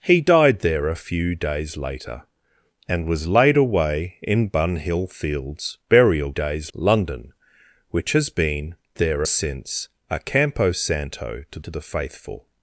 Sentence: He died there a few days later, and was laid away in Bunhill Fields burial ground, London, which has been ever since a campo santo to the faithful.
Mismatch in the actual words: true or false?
true